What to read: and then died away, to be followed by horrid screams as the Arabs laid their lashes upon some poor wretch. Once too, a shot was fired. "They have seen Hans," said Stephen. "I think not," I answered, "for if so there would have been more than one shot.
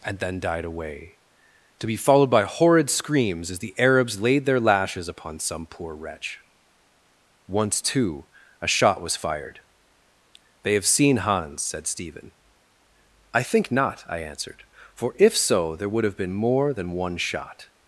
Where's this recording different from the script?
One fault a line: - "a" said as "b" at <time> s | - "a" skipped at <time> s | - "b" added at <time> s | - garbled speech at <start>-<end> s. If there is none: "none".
none